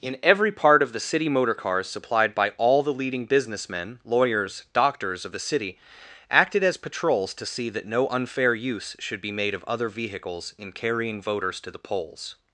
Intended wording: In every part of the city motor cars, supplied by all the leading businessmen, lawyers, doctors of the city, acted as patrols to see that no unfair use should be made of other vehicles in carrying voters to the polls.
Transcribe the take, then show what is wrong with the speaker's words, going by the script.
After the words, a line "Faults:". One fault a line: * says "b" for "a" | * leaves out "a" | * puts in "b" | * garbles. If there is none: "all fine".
In every part of the city motor cars, supplied by all the leading businessmen, lawyers, doctors of the city, acted as patrols to see that no unfair use should be made of other vehicles in carrying voters to the polls.
Faults:
all fine